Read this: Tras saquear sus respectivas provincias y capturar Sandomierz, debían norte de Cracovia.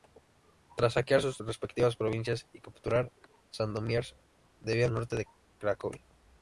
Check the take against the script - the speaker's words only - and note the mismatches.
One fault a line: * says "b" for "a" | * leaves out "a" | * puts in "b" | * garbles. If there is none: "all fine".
all fine